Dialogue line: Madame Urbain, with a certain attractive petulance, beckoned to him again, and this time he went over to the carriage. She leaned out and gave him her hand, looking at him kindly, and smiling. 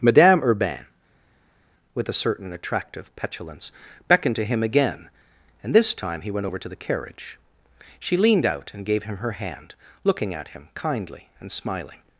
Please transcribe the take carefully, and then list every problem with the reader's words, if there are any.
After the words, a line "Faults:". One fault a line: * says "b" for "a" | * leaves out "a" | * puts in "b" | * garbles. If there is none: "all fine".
Madame Urbain, with a certain attractive petulance, beckoned to him again, and this time he went over to the carriage. She leaned out and gave him her hand, looking at him kindly, and smiling.
Faults:
all fine